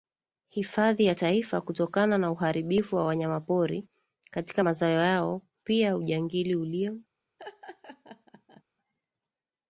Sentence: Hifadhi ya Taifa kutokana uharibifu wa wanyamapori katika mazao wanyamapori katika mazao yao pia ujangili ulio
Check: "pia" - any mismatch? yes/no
no